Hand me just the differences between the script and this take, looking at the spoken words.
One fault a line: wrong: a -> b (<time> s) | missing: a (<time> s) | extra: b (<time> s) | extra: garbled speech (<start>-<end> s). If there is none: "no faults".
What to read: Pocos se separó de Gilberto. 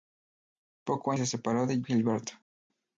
no faults